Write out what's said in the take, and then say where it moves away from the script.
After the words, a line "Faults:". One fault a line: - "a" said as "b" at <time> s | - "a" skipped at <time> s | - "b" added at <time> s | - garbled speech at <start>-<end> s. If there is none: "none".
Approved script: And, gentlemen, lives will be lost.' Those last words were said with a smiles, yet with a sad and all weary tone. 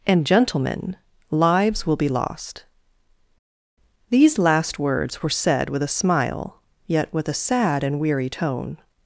And, gentlemen, lives will be lost.' These last words were said with a smile, yet with a sad and weary tone.
Faults:
- "Those" said as "These" at 4.1 s
- "smiles" said as "smile" at 5.9 s
- "all" skipped at 8.0 s